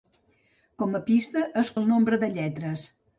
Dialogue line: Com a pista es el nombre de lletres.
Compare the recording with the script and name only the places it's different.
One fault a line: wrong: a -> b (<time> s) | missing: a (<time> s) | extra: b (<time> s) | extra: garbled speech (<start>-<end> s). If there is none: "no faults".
no faults